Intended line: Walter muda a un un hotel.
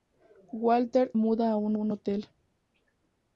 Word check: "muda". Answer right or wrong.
right